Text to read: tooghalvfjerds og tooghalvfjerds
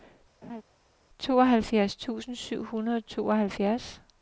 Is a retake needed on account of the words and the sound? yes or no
yes